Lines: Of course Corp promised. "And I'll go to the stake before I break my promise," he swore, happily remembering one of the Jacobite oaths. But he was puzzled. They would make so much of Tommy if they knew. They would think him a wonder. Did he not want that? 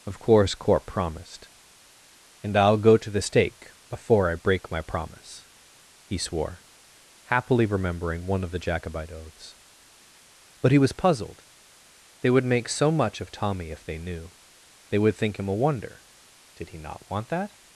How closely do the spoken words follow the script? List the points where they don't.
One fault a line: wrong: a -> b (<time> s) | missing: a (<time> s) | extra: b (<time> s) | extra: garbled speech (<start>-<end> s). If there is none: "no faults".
no faults